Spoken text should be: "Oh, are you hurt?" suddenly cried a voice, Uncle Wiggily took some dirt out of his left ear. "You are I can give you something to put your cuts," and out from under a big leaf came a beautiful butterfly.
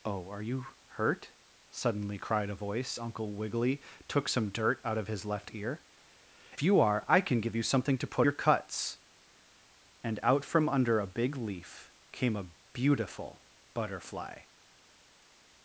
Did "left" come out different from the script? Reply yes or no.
no